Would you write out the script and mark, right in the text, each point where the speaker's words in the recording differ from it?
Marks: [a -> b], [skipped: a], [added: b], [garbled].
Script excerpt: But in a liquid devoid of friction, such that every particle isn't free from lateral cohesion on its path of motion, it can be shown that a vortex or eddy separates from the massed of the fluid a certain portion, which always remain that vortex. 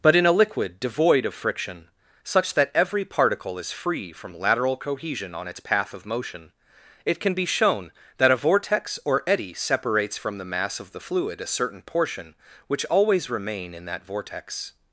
But in a liquid devoid of friction, such that every particle [isn't -> is] free from lateral cohesion on its path of motion, it can be shown that a vortex or eddy separates from the [massed -> mass] of the fluid a certain portion, which always remain [added: in] that vortex.